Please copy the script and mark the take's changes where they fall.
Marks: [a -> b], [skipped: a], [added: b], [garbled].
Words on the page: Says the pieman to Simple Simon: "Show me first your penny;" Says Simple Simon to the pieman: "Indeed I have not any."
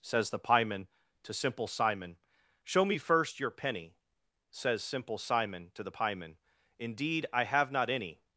Says the pieman to Simple Simon: "Show me first your penny;" Says Simple Simon to the pieman: "Indeed I have not any."